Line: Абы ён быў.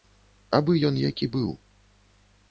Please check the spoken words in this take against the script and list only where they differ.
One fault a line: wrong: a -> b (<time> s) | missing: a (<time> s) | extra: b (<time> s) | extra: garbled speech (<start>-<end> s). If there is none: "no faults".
extra: які (1.0 s)